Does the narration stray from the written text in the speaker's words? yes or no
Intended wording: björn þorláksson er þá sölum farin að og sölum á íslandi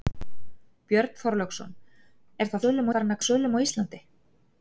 no